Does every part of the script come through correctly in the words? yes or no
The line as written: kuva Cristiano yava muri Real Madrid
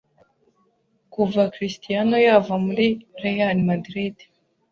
yes